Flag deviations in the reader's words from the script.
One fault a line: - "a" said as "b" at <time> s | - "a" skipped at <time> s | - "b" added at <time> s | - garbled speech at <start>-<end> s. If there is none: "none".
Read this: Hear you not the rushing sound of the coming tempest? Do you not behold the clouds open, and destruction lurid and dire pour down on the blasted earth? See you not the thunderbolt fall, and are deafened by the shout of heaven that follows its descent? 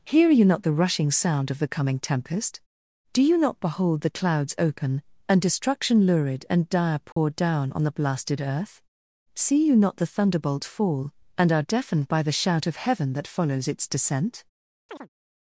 none